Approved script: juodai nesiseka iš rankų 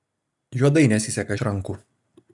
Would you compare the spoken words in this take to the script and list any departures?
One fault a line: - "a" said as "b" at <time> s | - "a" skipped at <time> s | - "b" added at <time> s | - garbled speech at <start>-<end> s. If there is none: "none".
none